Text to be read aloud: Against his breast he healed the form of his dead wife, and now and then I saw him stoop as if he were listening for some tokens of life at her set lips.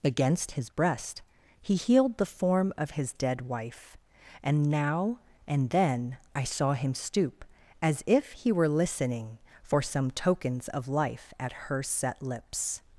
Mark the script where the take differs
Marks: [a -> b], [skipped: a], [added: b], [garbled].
Against his breast he healed the form of his dead wife, and now and then I saw him stoop as if he were listening for some tokens of life at her set lips.